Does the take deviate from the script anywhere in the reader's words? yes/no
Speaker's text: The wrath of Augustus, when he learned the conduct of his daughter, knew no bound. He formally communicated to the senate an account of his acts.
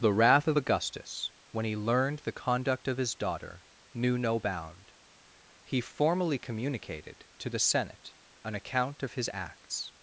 no